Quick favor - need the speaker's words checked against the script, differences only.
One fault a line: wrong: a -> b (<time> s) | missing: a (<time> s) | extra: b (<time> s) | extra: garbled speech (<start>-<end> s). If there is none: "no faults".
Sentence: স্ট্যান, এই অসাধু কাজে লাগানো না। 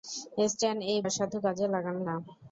no faults